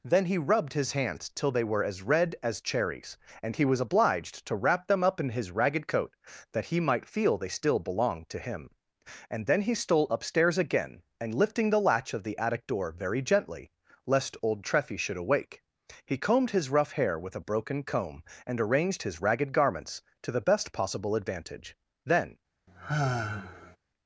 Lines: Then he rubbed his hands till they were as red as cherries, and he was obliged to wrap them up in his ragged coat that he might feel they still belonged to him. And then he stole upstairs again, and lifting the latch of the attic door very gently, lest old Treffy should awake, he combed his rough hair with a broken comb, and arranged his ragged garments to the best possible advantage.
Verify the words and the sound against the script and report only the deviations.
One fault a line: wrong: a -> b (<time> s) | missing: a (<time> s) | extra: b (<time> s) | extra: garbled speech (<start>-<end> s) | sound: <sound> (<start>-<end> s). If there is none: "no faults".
extra: Then (22.1 s)
sound: sigh (22.7-23.8 s)